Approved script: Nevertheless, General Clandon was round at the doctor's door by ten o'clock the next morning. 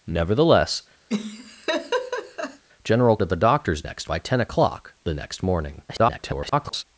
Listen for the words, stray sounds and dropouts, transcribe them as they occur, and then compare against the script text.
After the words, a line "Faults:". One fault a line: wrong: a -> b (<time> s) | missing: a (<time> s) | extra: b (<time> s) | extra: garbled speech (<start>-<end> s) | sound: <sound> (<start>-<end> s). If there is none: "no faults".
Nevertheless, General At the doctor's next by ten o'clock the next morning. [garbled]
Faults:
sound: laugh (1.1-2.6 s)
missing: Clandon was round (3.2 s)
wrong: door -> next (3.8 s)
extra: garbled speech (5.9-6.8 s)